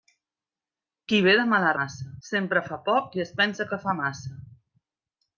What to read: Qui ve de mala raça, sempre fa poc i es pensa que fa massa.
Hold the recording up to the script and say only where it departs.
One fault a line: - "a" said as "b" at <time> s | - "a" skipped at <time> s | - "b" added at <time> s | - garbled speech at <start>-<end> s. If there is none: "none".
- "raça" said as "massa" at 1.8 s